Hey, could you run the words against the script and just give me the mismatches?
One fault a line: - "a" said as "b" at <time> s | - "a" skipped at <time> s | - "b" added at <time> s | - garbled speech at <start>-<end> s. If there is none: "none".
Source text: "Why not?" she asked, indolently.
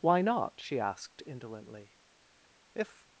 - "If" added at 2.7 s